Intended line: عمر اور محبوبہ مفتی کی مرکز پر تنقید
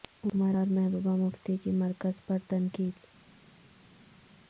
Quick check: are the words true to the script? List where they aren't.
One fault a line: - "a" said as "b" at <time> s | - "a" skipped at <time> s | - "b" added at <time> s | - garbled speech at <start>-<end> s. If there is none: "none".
none